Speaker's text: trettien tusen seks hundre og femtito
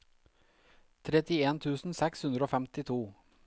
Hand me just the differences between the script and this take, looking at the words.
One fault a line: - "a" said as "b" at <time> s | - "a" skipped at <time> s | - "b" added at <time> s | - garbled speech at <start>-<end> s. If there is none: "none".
none